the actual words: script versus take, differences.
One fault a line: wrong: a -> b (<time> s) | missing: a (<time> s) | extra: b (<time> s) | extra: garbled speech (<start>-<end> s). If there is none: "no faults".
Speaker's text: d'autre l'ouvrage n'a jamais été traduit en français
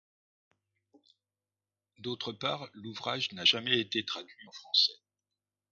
extra: part (2.3 s)